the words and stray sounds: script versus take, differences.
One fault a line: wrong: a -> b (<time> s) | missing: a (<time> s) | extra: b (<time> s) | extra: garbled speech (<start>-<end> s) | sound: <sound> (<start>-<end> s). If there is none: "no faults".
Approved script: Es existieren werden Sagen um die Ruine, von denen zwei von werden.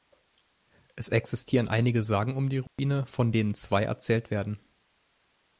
wrong: werden -> einige (1.7 s)
sound: dropout (2.7-2.8 s)
wrong: von -> erzählt (3.8 s)